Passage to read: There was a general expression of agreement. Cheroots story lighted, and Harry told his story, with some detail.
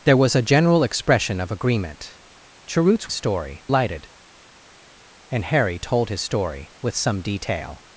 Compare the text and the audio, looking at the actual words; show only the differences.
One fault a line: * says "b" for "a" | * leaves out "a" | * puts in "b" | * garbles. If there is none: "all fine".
all fine